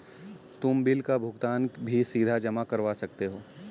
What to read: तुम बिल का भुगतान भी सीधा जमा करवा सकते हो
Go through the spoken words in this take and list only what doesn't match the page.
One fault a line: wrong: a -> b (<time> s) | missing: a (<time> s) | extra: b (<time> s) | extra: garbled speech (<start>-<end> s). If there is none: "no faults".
no faults